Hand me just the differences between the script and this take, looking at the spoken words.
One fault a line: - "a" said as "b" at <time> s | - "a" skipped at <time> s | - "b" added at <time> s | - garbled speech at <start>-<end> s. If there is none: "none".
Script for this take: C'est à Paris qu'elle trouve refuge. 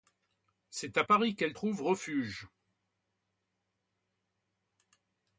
none